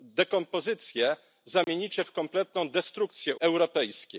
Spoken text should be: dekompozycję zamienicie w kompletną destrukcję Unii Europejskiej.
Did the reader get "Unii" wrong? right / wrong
wrong